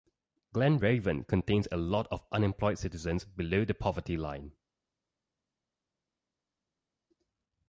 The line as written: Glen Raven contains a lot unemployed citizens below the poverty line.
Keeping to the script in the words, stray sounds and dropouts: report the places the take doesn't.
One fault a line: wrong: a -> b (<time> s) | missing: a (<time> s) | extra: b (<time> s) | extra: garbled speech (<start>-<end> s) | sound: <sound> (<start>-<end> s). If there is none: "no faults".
extra: of (2.1 s)